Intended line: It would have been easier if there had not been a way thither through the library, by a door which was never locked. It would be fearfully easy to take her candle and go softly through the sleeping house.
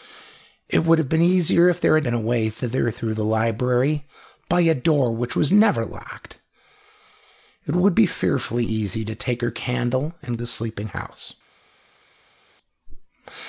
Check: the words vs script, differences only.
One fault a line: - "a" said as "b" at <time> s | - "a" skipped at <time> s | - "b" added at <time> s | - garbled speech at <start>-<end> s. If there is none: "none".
- "not" skipped at 2.1 s
- "go softly through" skipped at 10.4 s